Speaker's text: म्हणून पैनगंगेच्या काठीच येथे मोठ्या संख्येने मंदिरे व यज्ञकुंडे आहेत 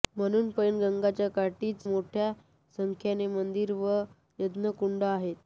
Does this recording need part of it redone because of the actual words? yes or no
yes